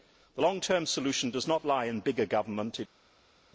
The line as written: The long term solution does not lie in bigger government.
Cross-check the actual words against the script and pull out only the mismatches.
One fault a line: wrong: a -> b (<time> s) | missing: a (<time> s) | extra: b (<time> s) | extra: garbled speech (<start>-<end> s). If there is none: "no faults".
no faults